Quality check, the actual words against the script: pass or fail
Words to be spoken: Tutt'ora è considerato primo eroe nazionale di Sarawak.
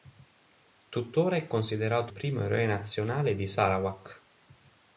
pass